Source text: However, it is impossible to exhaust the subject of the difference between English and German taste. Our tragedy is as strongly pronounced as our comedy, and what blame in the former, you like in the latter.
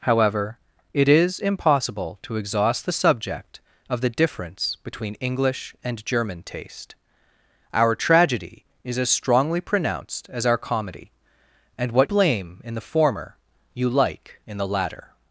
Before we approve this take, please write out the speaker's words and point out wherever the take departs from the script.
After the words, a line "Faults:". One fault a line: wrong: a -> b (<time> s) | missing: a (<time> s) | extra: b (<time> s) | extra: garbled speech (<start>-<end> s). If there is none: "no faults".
However, it is impossible to exhaust the subject of the difference between English and German taste. Our tragedy is as strongly pronounced as our comedy, and what blame in the former, you like in the latter.
Faults:
no faults